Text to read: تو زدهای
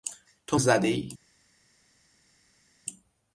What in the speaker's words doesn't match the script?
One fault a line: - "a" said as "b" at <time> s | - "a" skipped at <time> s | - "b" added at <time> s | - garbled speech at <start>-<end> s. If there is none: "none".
none